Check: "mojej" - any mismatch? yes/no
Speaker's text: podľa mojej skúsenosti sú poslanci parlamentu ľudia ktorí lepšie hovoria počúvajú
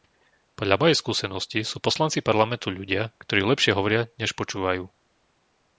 no